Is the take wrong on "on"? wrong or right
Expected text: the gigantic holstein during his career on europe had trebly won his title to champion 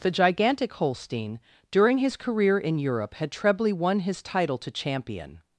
wrong